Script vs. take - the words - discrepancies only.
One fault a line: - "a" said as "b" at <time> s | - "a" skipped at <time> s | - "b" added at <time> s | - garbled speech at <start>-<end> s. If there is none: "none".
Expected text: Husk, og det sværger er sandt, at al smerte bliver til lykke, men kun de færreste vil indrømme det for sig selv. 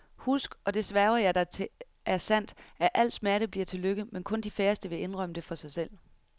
- "jeg dig til" added at 1.2 s